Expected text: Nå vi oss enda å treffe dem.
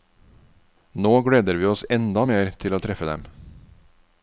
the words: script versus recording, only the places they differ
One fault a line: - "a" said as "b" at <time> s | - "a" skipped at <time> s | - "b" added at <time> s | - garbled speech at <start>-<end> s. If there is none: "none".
- "gleder" added at 1.2 s
- "mer til" added at 2.2 s